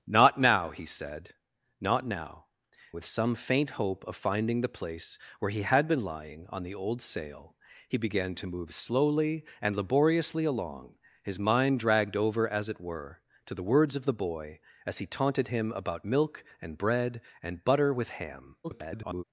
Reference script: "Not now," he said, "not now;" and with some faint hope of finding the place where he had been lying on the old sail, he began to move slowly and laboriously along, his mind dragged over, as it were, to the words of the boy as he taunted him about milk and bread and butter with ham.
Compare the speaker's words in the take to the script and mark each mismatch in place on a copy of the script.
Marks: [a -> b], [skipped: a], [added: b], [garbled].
"Not now," he said, "not now;" [skipped: and] with some faint hope of finding the place where he had been lying on the old sail, he began to move slowly and laboriously along, his mind dragged over, as it were, to the words of the boy as he taunted him about milk and bread and butter with ham. [garbled]